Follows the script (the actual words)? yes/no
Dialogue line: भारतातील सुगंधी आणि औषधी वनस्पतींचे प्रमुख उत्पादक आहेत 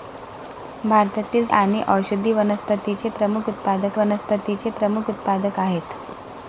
no